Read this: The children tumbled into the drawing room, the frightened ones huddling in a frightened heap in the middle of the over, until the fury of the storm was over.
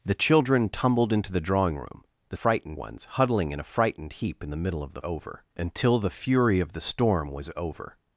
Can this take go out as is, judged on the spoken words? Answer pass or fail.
pass